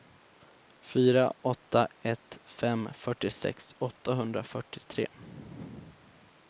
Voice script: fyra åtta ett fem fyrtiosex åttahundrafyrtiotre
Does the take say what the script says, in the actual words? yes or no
yes